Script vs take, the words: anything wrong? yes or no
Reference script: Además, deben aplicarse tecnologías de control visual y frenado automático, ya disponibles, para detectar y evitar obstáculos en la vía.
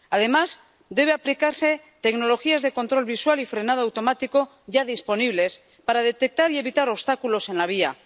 no